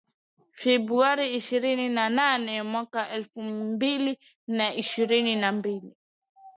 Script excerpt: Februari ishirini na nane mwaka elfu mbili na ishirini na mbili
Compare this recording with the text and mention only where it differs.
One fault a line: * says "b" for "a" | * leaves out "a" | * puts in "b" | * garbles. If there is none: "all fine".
all fine